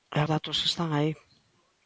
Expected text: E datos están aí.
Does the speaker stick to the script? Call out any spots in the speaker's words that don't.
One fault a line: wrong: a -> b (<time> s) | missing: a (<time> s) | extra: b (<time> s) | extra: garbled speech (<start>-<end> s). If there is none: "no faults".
no faults